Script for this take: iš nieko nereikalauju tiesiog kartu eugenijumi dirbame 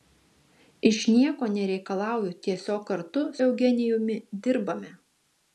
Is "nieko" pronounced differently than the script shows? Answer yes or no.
no